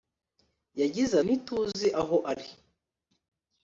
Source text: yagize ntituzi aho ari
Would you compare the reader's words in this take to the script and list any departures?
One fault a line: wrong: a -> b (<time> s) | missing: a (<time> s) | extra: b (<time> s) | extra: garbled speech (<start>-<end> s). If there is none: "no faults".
no faults